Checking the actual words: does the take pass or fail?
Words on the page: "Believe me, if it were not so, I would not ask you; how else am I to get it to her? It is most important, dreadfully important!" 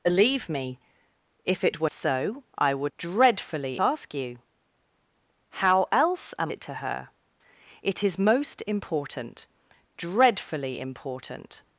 fail